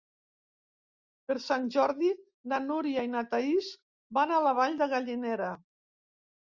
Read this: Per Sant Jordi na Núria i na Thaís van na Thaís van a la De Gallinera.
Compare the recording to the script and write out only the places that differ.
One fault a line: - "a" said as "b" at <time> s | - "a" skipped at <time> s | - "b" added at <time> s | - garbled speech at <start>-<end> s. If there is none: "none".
- "na Thaís van" skipped at 4.3 s
- "Vall" added at 4.6 s